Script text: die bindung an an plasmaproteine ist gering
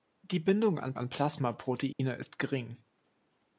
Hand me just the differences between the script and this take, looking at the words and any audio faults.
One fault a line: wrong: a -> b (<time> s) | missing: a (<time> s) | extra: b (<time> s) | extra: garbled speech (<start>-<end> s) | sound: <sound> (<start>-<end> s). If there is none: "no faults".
sound: dropout (1.9-2.0 s)